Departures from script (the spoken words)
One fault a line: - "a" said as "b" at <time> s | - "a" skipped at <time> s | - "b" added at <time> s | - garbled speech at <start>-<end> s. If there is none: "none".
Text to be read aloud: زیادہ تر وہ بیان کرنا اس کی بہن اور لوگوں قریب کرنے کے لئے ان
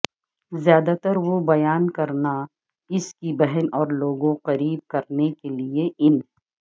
none